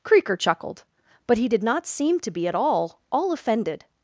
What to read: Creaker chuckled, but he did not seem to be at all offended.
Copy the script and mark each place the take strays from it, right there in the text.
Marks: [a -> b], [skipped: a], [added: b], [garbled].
Creaker chuckled, but he did not seem to be at all [added: all] offended.